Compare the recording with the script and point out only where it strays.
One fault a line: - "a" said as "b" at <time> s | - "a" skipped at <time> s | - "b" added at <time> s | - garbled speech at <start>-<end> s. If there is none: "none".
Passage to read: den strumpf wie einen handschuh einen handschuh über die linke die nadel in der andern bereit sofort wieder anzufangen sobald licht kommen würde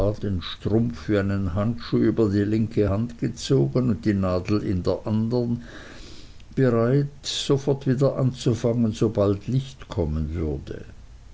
- "einen handschuh" skipped at 2.0 s
- "hand gezogen und" added at 2.9 s